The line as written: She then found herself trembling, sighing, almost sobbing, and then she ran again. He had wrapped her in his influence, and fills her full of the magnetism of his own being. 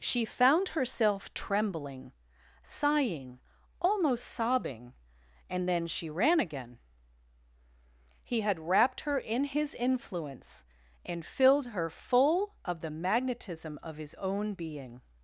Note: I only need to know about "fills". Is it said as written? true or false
false